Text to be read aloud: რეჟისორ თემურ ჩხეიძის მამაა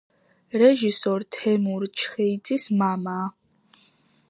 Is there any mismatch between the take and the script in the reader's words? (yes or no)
no